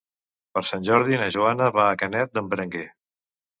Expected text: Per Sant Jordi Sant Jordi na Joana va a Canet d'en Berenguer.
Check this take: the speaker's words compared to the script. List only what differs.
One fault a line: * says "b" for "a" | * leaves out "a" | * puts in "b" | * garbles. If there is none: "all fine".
* leaves out "Sant Jordi"